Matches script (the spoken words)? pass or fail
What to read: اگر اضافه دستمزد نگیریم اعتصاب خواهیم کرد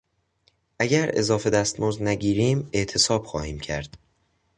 pass